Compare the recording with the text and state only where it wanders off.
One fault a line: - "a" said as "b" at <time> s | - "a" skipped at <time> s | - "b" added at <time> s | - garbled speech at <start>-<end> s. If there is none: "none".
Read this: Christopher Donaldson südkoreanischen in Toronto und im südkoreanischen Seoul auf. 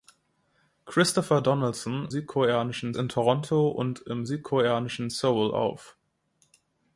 none